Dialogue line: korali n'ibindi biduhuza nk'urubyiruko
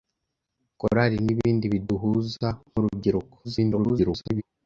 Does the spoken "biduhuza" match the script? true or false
true